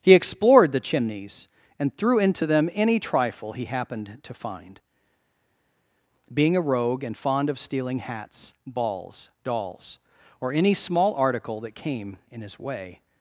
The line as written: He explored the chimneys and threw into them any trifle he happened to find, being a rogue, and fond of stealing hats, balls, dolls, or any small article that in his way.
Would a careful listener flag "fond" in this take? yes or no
no